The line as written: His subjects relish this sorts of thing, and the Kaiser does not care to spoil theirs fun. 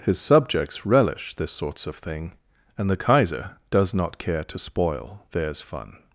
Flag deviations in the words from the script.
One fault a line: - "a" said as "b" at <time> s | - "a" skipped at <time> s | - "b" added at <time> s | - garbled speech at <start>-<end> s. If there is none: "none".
none